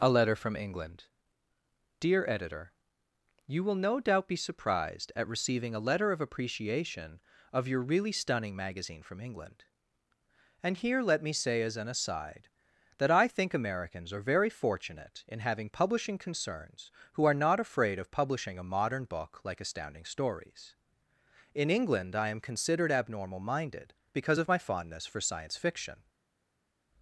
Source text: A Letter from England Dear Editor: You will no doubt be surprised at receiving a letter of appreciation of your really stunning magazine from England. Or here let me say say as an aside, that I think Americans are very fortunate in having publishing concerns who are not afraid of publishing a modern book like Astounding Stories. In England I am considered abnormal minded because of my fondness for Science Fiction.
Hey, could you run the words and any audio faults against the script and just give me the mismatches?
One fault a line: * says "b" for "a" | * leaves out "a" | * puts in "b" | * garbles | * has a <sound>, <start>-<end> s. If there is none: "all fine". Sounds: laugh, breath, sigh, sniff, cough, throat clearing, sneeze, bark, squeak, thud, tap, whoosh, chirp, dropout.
* says "And" for "Or"
* leaves out "say"